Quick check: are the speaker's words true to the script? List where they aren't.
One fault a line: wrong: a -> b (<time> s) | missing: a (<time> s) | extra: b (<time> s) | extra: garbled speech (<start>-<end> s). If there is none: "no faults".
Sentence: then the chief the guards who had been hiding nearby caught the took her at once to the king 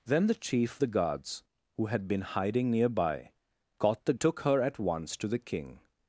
no faults